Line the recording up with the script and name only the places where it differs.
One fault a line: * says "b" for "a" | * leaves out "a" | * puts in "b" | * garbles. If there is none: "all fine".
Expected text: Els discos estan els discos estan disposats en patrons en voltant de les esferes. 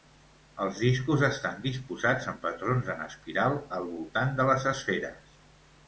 * leaves out "els discos estan"
* puts in "espiral al"